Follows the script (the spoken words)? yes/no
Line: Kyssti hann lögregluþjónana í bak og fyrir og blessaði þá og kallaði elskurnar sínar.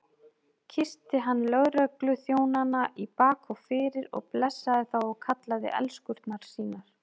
yes